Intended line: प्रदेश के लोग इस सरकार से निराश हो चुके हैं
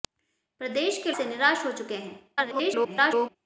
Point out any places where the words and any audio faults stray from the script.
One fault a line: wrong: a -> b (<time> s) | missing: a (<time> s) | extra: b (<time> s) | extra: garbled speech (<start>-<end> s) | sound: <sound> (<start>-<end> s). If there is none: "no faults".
missing: लोग इस सरकार (1.1 s)
extra: garbled speech (2.4-3.4 s)